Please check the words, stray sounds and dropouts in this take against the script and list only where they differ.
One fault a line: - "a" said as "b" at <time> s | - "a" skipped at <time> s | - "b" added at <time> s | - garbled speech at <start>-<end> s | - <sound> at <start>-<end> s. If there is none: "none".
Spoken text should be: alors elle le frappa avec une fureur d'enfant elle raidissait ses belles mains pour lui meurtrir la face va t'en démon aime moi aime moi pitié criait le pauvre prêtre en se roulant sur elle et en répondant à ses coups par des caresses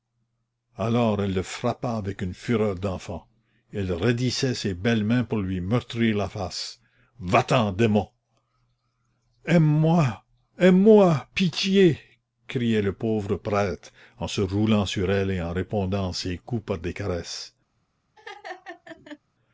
- laugh at 18.2-19.2 s